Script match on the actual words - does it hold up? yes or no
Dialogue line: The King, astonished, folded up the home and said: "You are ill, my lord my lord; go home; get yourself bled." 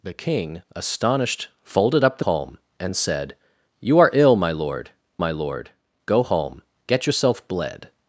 yes